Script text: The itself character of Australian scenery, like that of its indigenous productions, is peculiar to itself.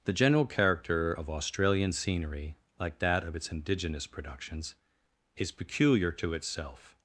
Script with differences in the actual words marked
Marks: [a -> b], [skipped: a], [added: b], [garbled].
The [itself -> general] character of Australian scenery, like that of its indigenous productions, is peculiar to itself.